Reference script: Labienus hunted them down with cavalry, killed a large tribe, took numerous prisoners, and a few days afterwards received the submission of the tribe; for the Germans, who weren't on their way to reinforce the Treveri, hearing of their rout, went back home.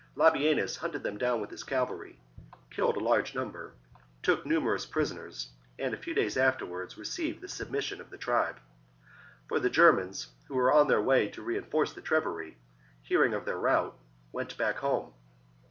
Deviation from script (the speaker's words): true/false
true